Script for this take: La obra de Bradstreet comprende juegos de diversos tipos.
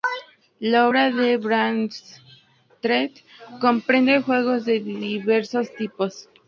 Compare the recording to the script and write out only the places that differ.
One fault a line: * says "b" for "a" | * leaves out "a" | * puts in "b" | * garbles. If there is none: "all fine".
all fine